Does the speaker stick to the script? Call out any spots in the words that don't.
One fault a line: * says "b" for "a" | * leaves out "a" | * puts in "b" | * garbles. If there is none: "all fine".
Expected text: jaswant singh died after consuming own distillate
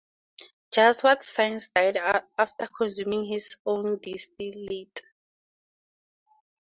* puts in "his"